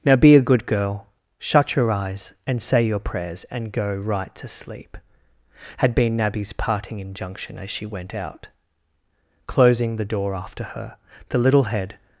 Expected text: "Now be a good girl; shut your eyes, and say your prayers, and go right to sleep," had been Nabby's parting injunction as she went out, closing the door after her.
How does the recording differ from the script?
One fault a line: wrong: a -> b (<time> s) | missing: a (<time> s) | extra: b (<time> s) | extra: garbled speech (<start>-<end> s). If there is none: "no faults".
extra: The little head (11.3 s)